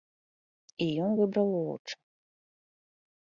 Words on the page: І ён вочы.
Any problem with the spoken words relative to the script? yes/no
yes